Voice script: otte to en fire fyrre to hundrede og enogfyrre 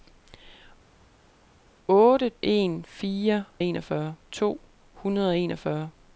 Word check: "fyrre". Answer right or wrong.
wrong